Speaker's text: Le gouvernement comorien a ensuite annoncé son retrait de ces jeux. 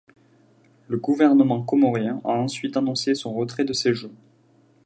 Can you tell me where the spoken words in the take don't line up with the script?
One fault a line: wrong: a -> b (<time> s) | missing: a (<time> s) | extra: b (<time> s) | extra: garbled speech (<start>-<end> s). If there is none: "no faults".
no faults